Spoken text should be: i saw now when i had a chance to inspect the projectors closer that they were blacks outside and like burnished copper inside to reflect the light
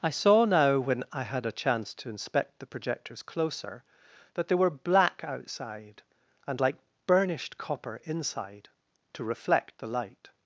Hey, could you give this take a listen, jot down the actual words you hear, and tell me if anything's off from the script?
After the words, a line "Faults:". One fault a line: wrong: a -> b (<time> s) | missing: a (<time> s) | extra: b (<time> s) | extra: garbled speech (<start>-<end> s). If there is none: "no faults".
i saw now when i had a chance to inspect the projectors closer that they were black outside and like burnished copper inside to reflect the light
Faults:
wrong: blacks -> black (4.7 s)